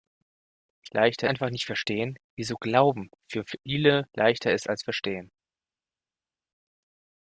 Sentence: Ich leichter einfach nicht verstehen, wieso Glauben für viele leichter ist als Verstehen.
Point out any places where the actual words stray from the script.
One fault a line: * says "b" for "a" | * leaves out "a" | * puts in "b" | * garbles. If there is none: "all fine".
all fine